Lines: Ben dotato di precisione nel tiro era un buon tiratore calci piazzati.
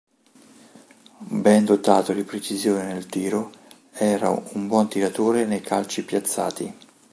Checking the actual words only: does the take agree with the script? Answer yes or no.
no